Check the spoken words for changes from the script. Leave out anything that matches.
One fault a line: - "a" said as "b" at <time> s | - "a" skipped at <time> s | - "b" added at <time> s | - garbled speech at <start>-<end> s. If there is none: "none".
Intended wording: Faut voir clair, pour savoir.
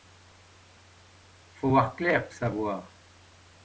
- "pour" skipped at 2.3 s